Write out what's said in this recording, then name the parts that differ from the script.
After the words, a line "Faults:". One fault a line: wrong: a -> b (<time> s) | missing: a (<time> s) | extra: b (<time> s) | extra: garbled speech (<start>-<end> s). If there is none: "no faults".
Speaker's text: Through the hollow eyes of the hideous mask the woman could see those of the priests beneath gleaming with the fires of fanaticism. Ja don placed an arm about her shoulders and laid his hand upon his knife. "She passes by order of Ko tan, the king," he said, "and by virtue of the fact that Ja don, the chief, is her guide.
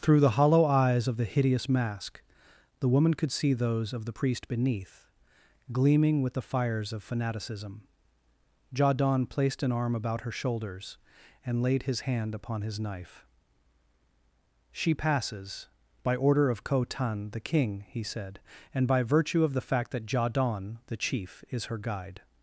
Through the hollow eyes of the hideous mask the woman could see those of the priest beneath gleaming with the fires of fanaticism. Ja don placed an arm about her shoulders and laid his hand upon his knife. "She passes by order of Ko tan, the king," he said, "and by virtue of the fact that Ja don, the chief, is her guide.
Faults:
wrong: priests -> priest (4.1 s)